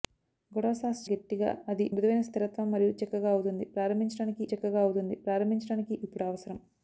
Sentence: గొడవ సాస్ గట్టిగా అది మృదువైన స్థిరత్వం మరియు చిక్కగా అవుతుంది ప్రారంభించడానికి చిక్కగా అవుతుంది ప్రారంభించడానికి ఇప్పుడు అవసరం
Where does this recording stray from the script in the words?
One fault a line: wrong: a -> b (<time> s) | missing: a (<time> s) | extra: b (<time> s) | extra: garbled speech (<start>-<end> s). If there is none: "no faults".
no faults